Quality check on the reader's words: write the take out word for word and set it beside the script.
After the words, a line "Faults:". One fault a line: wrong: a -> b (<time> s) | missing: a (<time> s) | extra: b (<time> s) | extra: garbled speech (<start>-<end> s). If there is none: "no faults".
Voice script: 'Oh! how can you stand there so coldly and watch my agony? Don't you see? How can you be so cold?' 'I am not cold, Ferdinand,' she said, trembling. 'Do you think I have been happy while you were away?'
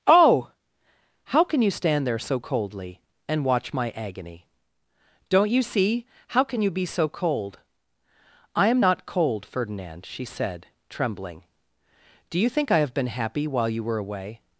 'Oh! how can you stand there so coldly and watch my agony? Don't you see? How can you be so cold?' 'I am not cold, Ferdinand,' she said, trembling. 'Do you think I have been happy while you were away?'
Faults:
no faults